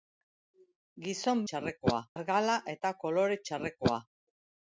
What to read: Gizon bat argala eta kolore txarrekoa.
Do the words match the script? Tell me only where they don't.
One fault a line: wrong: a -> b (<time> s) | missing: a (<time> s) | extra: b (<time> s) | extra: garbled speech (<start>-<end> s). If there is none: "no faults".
wrong: bat -> txarrekoa (1.5 s)